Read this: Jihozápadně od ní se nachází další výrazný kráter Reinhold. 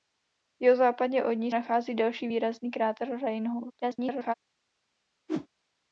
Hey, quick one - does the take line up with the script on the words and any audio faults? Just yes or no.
no